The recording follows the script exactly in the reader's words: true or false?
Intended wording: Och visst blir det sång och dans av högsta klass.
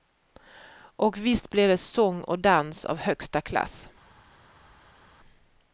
true